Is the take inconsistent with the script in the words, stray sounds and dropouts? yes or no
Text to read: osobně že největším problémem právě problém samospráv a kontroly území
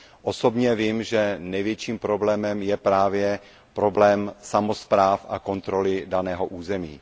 yes